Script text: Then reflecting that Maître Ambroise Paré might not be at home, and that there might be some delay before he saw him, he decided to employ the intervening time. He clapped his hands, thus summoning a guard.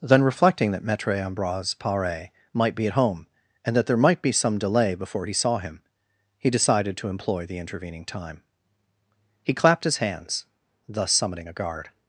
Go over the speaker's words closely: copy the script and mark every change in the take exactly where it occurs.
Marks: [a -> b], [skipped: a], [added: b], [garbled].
Then reflecting that Maître Ambroise Paré might [skipped: not] be at home, and that there might be some delay before he saw him, he decided to employ the intervening time. He clapped his hands, thus summoning a guard.